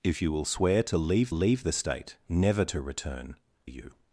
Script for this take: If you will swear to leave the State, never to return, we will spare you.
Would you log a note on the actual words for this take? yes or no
yes